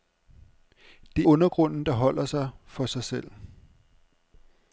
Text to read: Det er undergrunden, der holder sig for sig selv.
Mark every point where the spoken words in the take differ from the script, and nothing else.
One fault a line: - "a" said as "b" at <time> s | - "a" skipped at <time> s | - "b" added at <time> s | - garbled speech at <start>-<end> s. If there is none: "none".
none